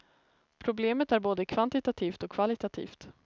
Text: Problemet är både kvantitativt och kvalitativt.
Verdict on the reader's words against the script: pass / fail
pass